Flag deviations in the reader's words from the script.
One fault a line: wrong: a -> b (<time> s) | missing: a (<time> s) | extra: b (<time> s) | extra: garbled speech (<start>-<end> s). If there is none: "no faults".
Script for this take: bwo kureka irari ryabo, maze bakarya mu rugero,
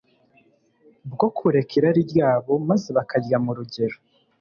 no faults